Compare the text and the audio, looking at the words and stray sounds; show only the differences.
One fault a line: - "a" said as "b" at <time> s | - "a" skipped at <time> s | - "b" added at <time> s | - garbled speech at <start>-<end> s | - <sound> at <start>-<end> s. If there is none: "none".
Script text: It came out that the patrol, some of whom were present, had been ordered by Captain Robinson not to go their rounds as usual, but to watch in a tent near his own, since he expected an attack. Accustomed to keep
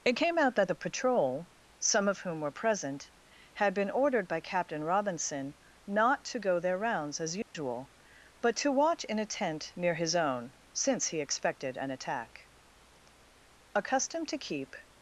- dropout at 7.4-7.5 s